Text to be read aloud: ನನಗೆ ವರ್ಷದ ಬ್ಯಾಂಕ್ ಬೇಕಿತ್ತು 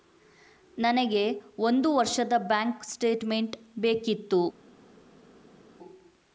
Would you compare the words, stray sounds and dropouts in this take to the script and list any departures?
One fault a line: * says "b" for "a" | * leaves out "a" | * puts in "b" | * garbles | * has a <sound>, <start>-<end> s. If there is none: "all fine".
* puts in "ಒಂದು"
* puts in "ಸ್ಟೇಟ್ಮೆಂಟ್"